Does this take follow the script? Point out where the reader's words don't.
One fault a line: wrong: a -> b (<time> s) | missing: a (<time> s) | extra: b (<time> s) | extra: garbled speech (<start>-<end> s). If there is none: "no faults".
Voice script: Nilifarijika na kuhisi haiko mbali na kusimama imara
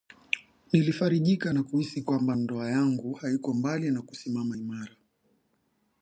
extra: kwamba ndoa yangu (2.0 s)